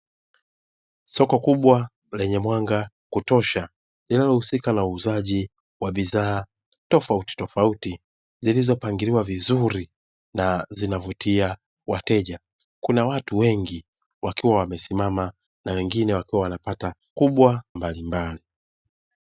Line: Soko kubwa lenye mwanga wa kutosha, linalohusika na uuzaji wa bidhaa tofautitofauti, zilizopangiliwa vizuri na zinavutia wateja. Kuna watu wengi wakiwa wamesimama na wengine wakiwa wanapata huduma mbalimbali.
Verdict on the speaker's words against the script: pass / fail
fail